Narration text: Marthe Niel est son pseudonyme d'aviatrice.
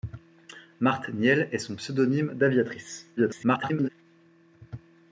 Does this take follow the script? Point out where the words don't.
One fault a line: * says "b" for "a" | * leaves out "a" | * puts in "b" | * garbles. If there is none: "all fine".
* garbles